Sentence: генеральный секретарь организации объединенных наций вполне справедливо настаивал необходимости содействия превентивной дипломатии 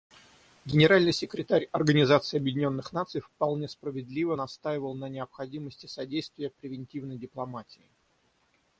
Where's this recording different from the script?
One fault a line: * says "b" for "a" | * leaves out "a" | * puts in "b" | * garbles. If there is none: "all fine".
* puts in "на"